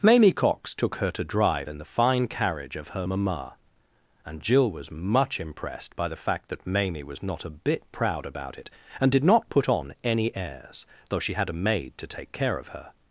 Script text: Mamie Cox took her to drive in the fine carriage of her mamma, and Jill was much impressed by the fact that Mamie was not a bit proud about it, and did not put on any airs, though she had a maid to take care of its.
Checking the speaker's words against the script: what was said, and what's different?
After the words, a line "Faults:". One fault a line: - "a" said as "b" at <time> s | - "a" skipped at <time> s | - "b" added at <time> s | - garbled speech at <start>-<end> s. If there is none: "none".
Mamie Cox took her to drive in the fine carriage of her mamma, and Jill was much impressed by the fact that Mamie was not a bit proud about it, and did not put on any airs, though she had a maid to take care of her.
Faults:
- "its" said as "her" at 12.7 s